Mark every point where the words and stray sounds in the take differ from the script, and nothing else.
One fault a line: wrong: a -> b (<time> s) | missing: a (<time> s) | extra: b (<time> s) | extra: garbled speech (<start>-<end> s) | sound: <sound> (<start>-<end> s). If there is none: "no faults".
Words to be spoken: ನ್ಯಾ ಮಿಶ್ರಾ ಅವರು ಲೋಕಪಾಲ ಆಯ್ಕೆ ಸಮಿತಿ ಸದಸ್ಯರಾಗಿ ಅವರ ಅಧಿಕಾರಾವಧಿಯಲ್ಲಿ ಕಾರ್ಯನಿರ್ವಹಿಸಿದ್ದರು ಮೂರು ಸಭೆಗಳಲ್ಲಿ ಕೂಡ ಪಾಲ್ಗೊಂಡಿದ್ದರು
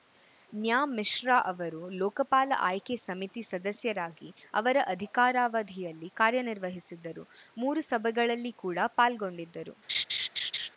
sound: laugh (9.9-10.7 s)